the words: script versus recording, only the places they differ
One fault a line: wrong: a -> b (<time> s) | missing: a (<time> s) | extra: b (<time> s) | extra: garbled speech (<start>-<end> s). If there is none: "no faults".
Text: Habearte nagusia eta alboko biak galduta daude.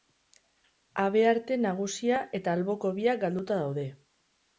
no faults